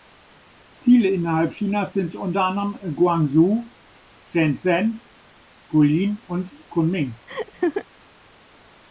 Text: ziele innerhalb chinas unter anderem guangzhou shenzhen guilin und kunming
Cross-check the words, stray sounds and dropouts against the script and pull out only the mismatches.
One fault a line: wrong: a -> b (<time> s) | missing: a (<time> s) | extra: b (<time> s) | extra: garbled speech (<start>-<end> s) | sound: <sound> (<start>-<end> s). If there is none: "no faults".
extra: sind (1.9 s)
sound: laugh (7.3-7.9 s)